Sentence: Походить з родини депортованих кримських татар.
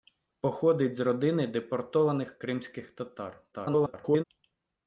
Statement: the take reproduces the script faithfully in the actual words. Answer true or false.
false